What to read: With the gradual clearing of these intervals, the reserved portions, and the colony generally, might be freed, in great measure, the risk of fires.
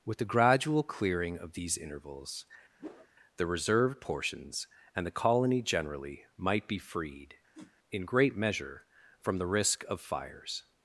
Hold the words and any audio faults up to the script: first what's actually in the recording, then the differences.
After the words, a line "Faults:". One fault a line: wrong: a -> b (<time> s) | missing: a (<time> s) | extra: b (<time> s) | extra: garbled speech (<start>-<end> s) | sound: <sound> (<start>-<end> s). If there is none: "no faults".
With the gradual clearing of these intervals, the reserved portions, and the colony generally, might be freed, in great measure, from the risk of fires.
Faults:
sound: whoosh (2.8-3.1 s)
sound: whoosh (7.5-7.8 s)
extra: from (9.2 s)